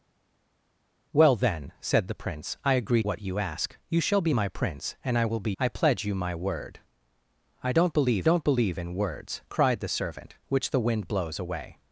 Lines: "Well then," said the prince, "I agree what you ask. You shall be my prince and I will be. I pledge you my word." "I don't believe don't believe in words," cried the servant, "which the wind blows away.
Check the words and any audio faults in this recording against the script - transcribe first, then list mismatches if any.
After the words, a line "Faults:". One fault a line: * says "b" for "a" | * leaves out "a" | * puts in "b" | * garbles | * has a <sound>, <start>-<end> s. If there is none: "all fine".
"Well then," said the prince, "I agree what you ask. You shall be my prince and I will be. I pledge you my word." "I don't believe don't believe in words," cried the servant, "which the wind blows away.
Faults:
all fine